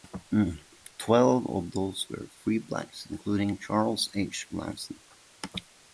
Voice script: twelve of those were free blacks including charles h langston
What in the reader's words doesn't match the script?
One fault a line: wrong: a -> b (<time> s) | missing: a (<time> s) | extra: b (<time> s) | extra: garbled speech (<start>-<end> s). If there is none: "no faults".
no faults